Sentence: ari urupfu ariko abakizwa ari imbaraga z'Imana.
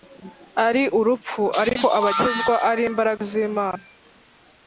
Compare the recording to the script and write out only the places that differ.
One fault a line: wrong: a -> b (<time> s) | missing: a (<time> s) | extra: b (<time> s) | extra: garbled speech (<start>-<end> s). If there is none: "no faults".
no faults